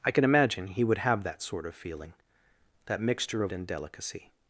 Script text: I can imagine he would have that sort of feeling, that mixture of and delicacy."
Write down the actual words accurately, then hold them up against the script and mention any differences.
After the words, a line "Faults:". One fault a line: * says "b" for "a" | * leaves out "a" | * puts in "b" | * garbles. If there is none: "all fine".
I can imagine he would have that sort of feeling, that mixture of and delicacy."
Faults:
all fine